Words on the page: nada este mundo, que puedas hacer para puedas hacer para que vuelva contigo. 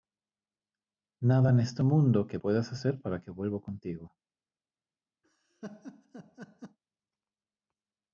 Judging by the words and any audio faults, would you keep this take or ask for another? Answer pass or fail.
fail